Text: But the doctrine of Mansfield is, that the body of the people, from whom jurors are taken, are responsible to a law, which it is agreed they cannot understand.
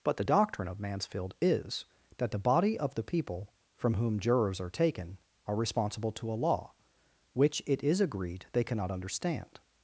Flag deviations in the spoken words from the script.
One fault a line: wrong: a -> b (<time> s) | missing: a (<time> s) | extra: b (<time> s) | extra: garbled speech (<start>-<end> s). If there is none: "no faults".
no faults